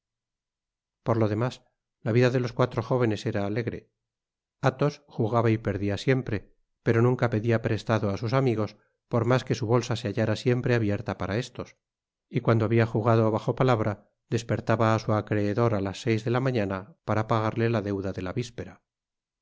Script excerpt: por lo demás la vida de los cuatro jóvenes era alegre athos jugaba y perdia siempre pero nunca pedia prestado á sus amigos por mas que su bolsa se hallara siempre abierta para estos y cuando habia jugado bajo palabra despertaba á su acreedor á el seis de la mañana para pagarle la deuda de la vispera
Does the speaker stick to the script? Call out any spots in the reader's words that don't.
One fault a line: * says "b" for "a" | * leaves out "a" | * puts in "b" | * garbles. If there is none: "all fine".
* says "las" for "el"